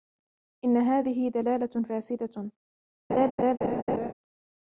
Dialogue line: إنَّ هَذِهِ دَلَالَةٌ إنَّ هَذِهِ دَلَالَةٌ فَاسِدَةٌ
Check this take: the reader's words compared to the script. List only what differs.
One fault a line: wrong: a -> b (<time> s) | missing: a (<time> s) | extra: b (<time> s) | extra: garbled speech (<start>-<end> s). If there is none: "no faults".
missing: إنَّ هَذِهِ دَلَالَةٌ (1.8 s)